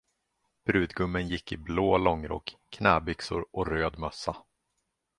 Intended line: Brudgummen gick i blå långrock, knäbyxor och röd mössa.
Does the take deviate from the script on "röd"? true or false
false